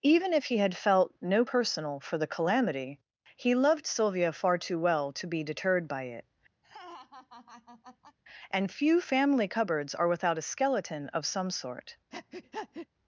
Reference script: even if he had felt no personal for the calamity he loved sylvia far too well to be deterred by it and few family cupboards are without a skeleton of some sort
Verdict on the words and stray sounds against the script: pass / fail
fail